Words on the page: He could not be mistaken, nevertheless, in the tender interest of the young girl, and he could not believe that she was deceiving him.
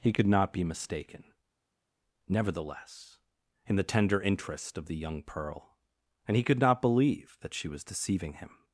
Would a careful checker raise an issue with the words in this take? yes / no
yes